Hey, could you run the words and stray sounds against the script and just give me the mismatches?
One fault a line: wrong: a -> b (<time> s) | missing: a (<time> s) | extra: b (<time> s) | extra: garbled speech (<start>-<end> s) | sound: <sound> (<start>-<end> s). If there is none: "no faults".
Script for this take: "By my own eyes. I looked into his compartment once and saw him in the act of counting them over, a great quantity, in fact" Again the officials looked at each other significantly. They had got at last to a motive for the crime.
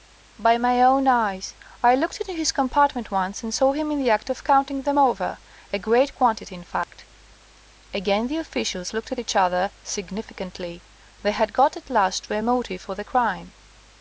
sound: dropout (6.8-6.9 s)